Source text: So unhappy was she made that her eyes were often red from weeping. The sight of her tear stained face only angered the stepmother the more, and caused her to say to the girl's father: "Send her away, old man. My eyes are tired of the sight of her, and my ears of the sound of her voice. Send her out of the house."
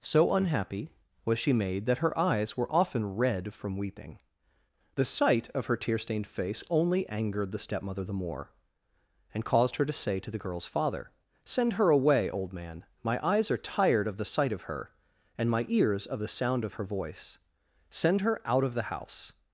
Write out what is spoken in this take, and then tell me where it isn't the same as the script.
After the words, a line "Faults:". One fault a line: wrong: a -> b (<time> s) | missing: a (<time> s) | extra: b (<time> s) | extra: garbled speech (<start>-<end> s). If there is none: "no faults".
So unhappy was she made that her eyes were often red from weeping. The sight of her tear stained face only angered the stepmother the more, and caused her to say to the girl's father: "Send her away, old man. My eyes are tired of the sight of her, and my ears of the sound of her voice. Send her out of the house."
Faults:
no faults